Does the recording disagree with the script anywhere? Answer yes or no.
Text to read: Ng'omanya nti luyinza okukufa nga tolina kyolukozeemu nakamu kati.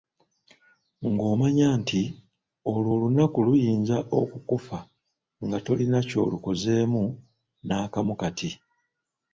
yes